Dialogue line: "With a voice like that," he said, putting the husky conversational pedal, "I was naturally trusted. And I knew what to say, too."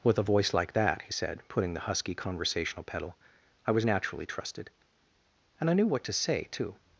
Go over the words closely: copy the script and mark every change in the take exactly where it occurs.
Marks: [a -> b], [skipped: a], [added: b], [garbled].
"With a voice like that," he said, putting the husky conversational pedal, "I was naturally trusted. And I knew what to say, too."